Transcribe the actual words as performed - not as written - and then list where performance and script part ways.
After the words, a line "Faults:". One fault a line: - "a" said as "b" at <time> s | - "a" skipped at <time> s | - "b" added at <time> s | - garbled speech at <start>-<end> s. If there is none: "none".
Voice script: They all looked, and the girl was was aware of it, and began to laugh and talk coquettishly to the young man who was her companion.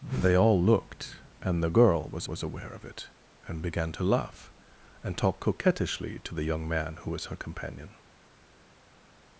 They all looked, and the girl was was aware of it, and began to laugh and talk coquettishly to the young man who was her companion.
Faults:
none